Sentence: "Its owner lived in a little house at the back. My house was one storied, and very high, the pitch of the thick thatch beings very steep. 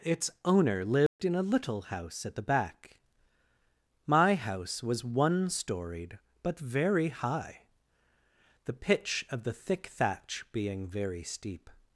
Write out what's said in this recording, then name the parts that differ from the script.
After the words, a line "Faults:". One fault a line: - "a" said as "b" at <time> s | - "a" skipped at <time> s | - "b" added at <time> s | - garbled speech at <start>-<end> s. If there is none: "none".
"Its owner lived in a little house at the back. My house was one storied, but very high, the pitch of the thick thatch being very steep.
Faults:
- "and" said as "but" at 6.4 s
- "beings" said as "being" at 10.5 s